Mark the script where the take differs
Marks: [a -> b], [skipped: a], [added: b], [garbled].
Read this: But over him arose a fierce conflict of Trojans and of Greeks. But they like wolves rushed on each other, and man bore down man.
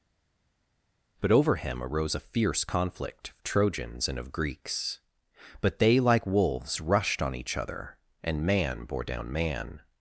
But over him arose a fierce conflict of Trojans and of Greeks. But they like wolves rushed on each other, and man bore down man.